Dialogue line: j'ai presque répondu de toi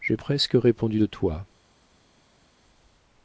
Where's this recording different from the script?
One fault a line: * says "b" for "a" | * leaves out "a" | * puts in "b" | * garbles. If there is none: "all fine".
all fine